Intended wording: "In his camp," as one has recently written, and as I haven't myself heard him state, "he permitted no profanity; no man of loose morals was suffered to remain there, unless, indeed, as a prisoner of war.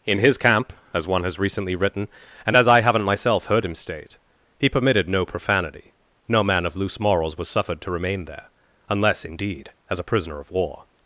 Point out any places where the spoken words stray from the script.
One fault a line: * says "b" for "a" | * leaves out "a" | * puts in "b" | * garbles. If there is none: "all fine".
all fine